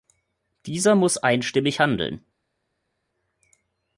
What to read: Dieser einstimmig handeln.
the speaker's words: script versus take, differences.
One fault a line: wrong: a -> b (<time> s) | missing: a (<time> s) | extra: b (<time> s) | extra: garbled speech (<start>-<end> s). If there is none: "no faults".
extra: muss (0.9 s)